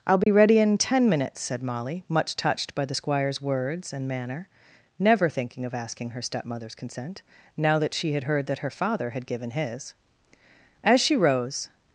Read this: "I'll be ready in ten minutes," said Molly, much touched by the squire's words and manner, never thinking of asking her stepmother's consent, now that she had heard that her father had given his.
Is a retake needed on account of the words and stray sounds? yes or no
yes